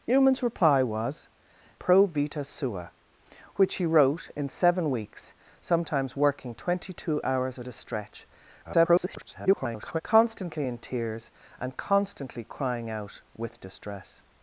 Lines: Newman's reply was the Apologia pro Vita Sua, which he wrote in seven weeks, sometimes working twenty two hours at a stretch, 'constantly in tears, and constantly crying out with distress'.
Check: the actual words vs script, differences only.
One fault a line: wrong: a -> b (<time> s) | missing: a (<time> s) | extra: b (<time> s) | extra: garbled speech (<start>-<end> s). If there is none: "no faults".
missing: the Apologia (1.3 s)
extra: garbled speech (8.6-10.0 s)